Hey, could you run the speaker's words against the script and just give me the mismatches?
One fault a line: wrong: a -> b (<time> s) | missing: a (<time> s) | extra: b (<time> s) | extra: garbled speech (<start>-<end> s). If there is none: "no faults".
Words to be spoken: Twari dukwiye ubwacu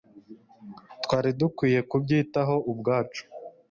extra: kubyitaho (1.9 s)